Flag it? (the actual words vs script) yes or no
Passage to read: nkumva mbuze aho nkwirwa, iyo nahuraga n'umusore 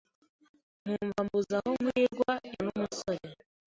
yes